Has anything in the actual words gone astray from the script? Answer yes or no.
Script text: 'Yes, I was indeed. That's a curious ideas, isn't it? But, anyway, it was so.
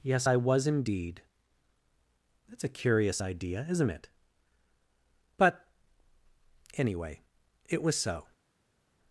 yes